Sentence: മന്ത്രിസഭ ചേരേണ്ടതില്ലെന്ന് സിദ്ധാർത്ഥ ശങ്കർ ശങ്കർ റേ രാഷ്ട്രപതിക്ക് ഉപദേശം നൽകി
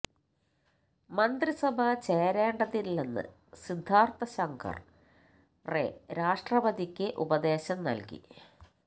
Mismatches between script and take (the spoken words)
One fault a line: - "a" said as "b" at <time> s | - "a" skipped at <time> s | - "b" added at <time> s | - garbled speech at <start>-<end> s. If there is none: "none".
- "ശങ്കർ" skipped at 4.8 s